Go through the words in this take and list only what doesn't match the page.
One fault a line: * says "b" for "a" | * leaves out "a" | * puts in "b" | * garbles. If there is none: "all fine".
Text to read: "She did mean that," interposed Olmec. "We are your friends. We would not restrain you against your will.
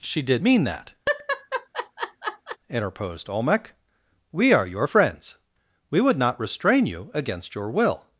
all fine